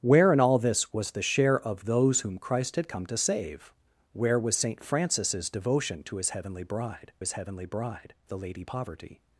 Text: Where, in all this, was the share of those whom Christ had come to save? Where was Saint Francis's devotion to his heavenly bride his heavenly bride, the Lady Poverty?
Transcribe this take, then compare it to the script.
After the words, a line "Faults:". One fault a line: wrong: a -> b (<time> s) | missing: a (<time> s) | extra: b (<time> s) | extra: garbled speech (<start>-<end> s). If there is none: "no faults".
Where, in all this, was the share of those whom Christ had come to save? Where was Saint Francis's devotion to his heavenly bride his heavenly bride, the Lady Poverty?
Faults:
no faults